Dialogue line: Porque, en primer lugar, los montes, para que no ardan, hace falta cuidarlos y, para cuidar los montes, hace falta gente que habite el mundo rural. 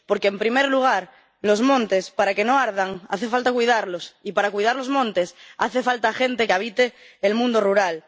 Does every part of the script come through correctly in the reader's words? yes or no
yes